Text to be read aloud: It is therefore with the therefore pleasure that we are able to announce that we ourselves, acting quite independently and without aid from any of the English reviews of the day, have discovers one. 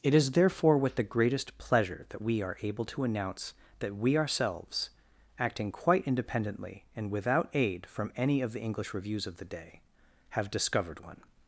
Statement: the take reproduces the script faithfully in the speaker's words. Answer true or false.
false